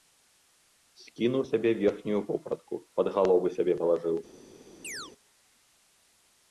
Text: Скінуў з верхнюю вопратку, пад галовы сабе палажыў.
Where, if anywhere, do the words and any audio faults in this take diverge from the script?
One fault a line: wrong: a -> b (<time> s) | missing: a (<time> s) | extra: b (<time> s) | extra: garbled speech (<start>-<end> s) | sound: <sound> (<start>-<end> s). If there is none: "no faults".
extra: сябе (1.5 s)
sound: chirp (4.8-5.1 s)